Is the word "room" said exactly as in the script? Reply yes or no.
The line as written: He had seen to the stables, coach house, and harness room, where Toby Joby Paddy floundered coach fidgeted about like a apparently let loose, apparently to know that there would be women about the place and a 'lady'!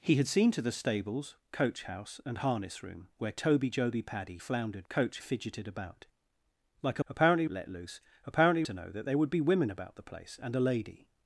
yes